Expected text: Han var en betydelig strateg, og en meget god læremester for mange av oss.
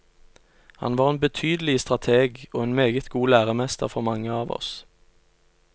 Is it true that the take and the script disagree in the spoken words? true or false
false